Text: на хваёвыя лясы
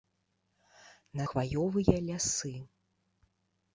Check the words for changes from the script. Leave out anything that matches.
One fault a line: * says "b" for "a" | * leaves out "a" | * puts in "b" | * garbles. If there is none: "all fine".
all fine